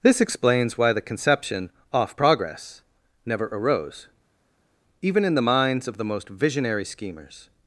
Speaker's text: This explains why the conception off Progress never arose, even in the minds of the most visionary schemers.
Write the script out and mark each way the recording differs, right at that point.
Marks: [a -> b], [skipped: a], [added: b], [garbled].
This explains why the conception off Progress never arose, even in the minds of the most visionary schemers.